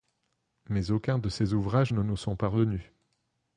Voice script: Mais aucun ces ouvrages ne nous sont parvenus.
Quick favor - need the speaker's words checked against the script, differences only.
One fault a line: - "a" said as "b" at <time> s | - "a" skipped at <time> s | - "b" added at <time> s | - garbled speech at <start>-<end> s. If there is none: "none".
- "de" added at 1.2 s